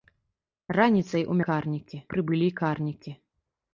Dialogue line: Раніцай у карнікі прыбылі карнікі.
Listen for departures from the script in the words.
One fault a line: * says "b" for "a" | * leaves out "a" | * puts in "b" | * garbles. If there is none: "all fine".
all fine